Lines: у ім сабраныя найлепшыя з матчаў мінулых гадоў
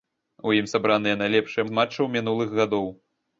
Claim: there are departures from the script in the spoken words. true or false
false